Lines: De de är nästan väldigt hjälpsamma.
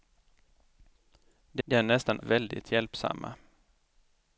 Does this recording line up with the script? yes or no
yes